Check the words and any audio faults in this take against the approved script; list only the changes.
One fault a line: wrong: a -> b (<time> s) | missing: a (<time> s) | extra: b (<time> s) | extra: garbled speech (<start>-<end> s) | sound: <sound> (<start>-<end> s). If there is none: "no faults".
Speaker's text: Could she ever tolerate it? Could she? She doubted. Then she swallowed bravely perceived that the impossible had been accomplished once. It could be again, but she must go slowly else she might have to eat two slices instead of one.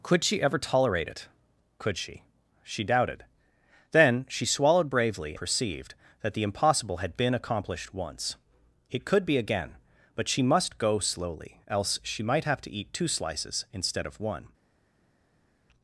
no faults